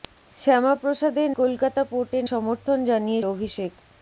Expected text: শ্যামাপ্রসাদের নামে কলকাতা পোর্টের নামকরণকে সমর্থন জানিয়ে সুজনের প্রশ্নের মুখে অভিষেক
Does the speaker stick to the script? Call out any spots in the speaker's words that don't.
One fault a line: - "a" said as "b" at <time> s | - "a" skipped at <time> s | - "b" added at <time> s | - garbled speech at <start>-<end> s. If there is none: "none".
- "নামে" skipped at 1.3 s
- "নামকরণকে" skipped at 2.2 s
- "সুজনের প্রশ্নের মুখে" skipped at 3.2 s